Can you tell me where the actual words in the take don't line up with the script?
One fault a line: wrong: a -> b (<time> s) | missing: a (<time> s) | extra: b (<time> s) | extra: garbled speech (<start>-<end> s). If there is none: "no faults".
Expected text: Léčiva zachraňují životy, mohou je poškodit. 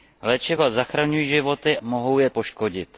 no faults